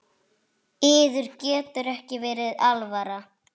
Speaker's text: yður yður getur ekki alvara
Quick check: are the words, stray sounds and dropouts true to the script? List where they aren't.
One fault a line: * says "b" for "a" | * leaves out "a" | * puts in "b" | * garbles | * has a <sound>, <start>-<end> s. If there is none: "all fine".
* leaves out "yður"
* puts in "verið"